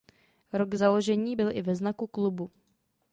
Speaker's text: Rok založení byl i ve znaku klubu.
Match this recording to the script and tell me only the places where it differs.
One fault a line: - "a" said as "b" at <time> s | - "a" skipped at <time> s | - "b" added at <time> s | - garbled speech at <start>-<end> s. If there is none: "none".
none